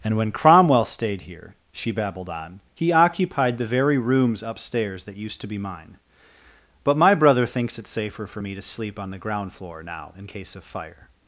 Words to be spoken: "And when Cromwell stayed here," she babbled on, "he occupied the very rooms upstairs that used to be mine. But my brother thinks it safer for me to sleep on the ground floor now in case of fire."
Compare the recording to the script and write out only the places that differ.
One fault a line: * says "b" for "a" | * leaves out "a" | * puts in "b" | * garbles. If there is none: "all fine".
all fine